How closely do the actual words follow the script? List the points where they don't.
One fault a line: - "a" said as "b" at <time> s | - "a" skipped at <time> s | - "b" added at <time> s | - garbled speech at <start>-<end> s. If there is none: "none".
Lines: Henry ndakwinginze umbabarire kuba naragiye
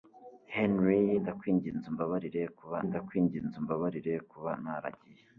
- "ndakwinginze umbabarire kuba" added at 2.9 s